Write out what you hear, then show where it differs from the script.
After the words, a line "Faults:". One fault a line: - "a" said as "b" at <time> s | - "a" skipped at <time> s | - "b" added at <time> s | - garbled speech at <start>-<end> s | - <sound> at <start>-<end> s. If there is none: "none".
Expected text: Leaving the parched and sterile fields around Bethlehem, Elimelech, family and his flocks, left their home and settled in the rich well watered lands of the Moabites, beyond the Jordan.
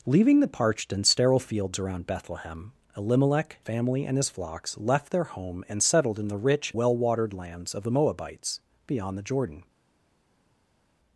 Leaving the parched and sterile fields around Bethlehem, Elimelech, family and his flocks, left their home and settled in the rich well watered lands of the Moabites, beyond the Jordan.
Faults:
none